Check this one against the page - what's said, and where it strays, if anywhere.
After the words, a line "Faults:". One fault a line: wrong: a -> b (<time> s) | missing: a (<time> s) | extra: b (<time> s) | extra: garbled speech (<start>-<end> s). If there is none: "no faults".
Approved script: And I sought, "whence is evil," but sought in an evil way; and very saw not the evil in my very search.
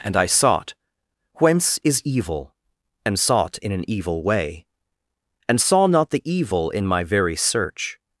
And I sought, "whence is evil," and sought in an evil way; and saw not the evil in my very search.
Faults:
wrong: but -> and (3.0 s)
missing: very (5.6 s)